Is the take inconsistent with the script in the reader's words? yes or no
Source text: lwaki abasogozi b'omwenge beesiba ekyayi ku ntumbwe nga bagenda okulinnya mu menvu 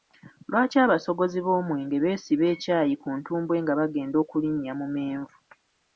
no